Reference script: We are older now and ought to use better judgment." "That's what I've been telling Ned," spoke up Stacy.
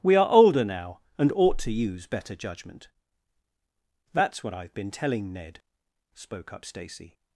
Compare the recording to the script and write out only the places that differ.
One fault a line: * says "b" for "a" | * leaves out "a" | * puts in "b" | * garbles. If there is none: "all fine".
all fine